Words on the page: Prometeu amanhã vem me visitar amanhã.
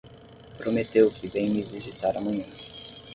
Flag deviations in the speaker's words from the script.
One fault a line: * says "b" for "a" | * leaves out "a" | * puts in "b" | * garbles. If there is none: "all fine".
* says "que" for "amanhã"